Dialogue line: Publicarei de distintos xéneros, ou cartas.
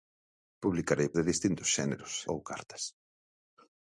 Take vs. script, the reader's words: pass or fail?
pass